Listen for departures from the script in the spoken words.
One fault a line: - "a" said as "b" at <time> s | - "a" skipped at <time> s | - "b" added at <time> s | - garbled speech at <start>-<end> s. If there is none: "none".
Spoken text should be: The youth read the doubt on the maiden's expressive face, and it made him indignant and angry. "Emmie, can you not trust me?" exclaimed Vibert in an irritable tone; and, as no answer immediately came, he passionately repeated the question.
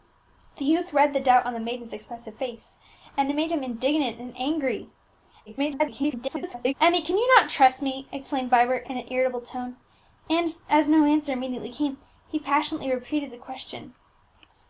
- garbled speech at 5.5-6.7 s